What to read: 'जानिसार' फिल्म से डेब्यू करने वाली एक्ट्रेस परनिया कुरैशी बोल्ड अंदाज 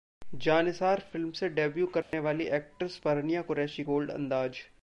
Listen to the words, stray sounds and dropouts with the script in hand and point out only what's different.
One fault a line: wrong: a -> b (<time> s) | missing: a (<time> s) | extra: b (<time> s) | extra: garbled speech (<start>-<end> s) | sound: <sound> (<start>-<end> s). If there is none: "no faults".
sound: dropout (2.0-2.1 s)